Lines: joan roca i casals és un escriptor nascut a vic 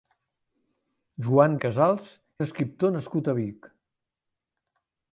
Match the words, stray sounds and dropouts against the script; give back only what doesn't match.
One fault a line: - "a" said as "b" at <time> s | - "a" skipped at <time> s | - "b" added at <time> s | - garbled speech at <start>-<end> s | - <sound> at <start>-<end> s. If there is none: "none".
- "roca" skipped at 1.6 s
- "és" skipped at 2.1 s